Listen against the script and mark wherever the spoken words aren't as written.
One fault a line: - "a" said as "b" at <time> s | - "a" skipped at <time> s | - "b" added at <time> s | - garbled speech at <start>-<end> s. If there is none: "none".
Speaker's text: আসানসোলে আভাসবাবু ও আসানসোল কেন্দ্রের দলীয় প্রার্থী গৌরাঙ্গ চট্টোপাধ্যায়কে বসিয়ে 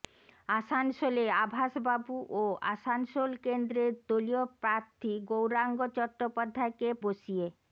none